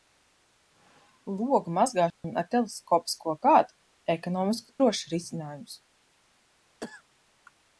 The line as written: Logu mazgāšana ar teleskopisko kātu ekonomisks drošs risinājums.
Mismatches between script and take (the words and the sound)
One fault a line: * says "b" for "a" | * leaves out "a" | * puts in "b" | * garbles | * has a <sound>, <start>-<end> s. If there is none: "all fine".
* has a dropout, 2.1-2.2 s
* has a cough, 6.8-7.0 s